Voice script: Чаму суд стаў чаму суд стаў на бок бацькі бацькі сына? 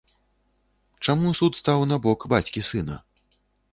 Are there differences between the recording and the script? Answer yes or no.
yes